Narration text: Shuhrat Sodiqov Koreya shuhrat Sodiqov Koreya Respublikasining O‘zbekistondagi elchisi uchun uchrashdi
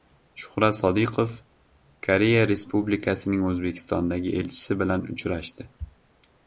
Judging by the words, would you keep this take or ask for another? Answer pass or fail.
fail